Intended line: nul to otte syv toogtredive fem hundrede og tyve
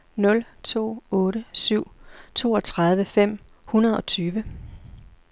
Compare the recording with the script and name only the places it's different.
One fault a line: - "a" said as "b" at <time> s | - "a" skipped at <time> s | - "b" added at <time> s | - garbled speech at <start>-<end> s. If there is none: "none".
none